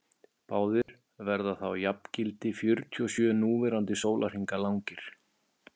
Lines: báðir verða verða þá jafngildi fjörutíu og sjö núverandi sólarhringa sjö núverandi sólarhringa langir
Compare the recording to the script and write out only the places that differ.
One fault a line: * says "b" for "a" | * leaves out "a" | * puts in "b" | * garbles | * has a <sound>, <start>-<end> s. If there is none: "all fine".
* has a dropout, 0.8-0.9 s
* leaves out "verða"
* leaves out "sjö núverandi sólarhringa"